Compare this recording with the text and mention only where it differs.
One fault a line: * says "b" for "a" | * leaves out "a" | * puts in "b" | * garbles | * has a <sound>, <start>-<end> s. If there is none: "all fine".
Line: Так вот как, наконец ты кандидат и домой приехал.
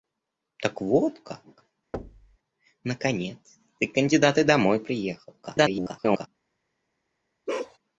* has a thud, 1.9-2.4 s
* garbles
* has a bark, 7.5-7.8 s